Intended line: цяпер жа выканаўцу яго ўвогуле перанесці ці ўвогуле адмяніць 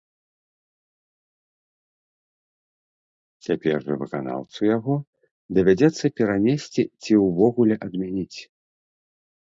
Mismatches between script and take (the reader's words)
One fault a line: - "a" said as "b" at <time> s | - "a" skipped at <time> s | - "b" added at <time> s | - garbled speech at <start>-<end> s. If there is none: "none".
- "ўвогуле" said as "давядзецца" at 5.6 s